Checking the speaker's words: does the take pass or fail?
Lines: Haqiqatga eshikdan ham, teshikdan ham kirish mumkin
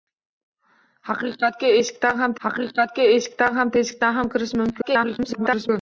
fail